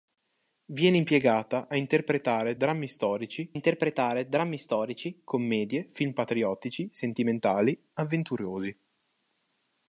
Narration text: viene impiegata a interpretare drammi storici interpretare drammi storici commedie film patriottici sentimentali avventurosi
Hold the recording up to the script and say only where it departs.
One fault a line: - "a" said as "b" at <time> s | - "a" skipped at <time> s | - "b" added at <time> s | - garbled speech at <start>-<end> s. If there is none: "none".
none